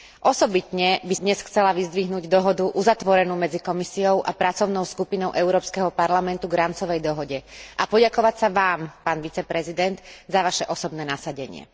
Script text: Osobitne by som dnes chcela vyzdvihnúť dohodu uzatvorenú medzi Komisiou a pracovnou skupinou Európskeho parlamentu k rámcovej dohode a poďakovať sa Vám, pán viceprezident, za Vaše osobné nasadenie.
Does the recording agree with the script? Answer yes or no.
no